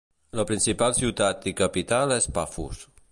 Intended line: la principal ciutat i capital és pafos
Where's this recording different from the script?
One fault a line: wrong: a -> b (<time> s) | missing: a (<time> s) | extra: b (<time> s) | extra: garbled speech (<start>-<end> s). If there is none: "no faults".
no faults